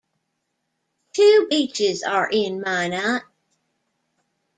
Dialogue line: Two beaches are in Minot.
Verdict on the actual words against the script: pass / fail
pass